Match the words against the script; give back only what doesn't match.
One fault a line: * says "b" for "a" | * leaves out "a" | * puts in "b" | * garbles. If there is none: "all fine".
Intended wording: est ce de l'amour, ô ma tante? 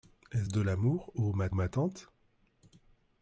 * puts in "ma"